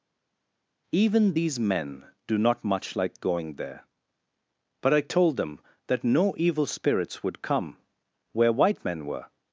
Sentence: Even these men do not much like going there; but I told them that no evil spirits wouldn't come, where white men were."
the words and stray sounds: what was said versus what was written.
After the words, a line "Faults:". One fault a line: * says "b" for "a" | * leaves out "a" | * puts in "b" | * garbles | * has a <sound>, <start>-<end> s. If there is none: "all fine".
Even these men do not much like going there; but I told them that no evil spirits would come, where white men were."
Faults:
* says "would" for "wouldn't"